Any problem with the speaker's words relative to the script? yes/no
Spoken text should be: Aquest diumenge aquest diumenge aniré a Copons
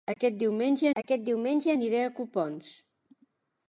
no